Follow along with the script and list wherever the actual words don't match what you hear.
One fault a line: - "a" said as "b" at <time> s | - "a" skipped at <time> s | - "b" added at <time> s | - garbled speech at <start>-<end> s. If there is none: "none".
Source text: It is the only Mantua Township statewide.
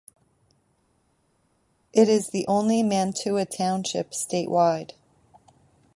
none